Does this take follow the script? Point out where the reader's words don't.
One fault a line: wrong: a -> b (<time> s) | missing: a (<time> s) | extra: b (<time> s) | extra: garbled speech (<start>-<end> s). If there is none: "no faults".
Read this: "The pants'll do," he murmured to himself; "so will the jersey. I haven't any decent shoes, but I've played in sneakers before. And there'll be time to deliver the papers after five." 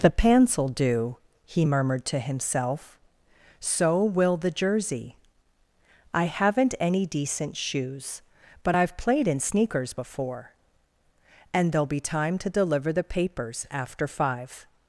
no faults